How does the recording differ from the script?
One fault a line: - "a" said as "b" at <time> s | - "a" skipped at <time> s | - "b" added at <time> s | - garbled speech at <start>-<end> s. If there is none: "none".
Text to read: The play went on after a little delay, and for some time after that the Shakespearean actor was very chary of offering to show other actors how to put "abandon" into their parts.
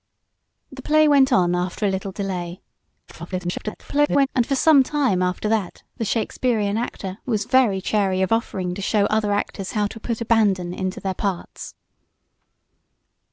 - garbled speech at 3.1-4.3 s